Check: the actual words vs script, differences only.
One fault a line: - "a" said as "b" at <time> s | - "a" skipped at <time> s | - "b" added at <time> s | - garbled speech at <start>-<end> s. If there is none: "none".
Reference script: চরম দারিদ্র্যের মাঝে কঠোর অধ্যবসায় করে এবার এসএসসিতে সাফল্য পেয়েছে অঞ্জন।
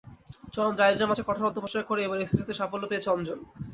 none